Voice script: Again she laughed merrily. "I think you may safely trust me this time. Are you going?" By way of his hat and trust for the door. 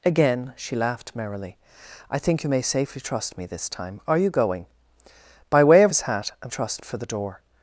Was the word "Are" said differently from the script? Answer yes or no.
no